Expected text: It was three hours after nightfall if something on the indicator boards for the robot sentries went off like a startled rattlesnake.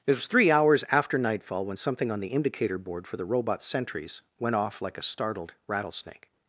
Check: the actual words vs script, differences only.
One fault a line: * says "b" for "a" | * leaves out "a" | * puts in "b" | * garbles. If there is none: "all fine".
* says "when" for "if"
* says "board" for "boards"